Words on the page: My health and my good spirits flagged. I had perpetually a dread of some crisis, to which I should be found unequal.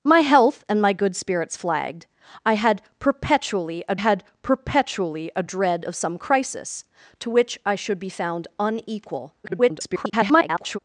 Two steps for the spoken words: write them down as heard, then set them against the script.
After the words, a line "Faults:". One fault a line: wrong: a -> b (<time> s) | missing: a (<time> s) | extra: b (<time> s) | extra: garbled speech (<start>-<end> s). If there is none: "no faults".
My health and my good spirits flagged. I had perpetually a had perpetually a dread of some crisis, to which I should be found unequal. [garbled]
Faults:
extra: had perpetually a (3.9 s)
extra: garbled speech (9.4-10.8 s)